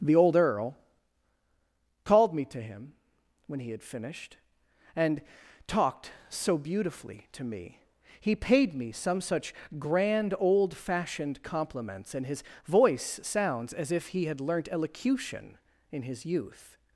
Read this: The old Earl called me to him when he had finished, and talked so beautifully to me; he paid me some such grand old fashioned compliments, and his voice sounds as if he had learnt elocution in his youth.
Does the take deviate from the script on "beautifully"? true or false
false